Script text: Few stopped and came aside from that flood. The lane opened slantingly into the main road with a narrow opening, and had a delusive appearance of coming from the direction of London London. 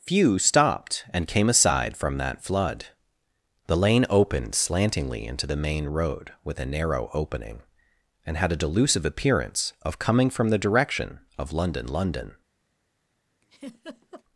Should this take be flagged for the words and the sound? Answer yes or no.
yes